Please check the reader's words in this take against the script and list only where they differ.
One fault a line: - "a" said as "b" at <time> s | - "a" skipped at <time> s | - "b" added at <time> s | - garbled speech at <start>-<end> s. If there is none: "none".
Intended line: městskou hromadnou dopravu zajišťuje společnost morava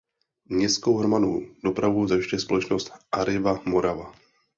- "arriva" added at 3.1 s